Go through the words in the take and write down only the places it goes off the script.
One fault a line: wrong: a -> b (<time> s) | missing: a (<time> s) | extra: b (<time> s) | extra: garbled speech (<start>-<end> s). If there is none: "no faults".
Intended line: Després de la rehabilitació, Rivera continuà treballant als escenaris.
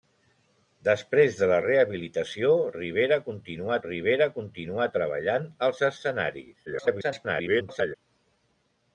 extra: Rivera continuà (3.9 s)
extra: garbled speech (6.7-8.0 s)